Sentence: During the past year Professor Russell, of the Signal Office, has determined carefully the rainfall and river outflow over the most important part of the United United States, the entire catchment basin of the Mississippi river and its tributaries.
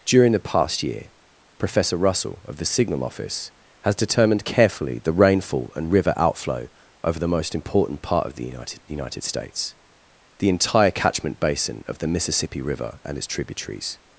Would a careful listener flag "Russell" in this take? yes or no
no